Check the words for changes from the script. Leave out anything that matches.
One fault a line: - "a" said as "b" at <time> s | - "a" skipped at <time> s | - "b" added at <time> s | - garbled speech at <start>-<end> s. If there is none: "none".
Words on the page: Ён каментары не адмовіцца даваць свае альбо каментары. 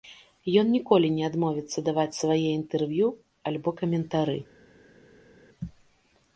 - "каментары" said as "ніколі" at 0.8 s
- "інтэрв'ю" added at 2.6 s